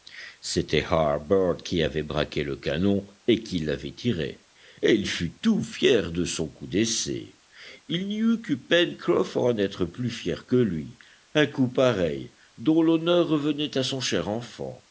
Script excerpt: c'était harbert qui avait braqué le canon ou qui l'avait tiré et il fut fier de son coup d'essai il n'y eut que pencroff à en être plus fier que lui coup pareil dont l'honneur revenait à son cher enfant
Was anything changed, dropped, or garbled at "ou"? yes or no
yes